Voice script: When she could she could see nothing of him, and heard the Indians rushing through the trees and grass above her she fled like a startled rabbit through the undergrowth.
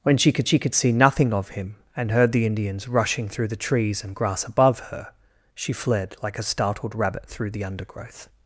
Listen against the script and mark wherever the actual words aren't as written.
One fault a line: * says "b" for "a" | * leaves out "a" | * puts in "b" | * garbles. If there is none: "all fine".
all fine